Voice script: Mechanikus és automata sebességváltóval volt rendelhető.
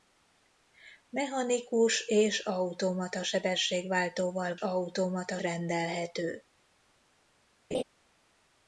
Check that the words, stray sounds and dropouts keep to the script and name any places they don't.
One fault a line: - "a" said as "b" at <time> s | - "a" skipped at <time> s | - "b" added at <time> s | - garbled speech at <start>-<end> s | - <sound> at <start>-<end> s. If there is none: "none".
- "volt" said as "automata" at 4.5 s
- laugh at 7.7-7.8 s